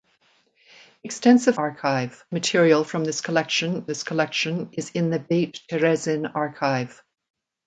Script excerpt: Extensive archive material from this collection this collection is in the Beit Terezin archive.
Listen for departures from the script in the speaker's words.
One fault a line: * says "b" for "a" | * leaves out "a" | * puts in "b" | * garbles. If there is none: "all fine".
all fine